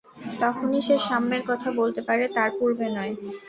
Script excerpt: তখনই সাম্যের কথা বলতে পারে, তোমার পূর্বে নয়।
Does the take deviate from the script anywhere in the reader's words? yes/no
yes